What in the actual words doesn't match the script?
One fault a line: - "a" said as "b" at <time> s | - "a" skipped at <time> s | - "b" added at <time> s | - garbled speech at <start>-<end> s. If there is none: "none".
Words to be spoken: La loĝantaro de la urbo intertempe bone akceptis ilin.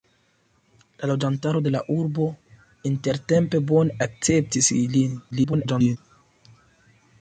- garbled speech at 5.3-6.0 s